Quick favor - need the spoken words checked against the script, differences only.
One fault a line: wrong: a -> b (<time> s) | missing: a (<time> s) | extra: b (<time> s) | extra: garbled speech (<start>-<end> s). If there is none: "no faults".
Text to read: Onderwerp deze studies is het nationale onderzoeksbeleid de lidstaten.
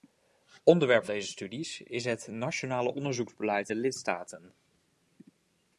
no faults